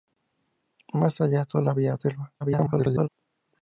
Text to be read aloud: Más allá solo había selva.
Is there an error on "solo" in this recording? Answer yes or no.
no